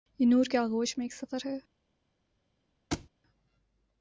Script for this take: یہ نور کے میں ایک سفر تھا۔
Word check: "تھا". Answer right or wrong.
wrong